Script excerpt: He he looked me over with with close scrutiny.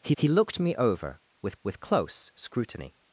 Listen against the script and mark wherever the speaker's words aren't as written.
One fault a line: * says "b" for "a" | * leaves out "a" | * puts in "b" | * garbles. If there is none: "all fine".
all fine